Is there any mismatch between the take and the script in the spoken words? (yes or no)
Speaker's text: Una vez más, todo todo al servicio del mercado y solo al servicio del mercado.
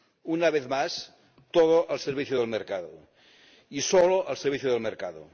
yes